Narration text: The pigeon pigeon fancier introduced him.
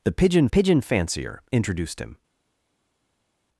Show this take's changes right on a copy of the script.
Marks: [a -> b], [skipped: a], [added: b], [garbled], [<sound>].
The pigeon pigeon fancier introduced him.